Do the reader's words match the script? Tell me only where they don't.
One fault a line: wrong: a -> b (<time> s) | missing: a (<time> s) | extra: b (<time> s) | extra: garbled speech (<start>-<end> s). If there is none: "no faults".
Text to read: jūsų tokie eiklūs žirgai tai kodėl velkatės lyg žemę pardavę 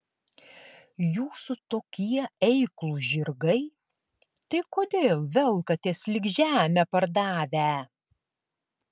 no faults